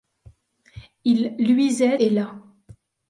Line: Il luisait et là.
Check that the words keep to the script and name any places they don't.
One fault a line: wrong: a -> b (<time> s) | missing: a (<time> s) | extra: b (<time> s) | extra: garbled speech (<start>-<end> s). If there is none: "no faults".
no faults